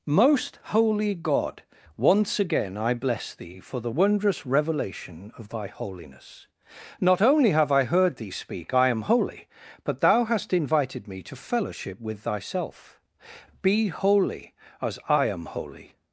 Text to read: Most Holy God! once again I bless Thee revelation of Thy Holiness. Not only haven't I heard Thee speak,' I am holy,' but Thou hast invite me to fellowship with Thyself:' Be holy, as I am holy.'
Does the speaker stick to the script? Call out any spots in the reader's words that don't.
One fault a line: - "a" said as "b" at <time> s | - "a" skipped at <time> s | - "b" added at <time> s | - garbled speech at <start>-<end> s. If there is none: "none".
- "for the wondrous" added at 3.6 s
- "haven't" said as "have" at 7.5 s
- "invite" said as "invited" at 10.5 s